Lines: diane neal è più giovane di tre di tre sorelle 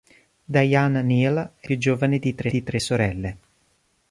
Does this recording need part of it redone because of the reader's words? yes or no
no